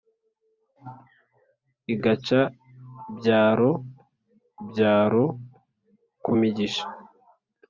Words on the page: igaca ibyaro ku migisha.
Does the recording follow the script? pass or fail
fail